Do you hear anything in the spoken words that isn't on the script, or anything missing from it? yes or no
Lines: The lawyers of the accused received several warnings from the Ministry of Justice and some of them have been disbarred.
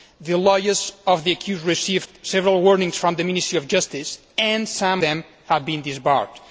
yes